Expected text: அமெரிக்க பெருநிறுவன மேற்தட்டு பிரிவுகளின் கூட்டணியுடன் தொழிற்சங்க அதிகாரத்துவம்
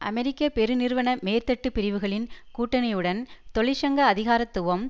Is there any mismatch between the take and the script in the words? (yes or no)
no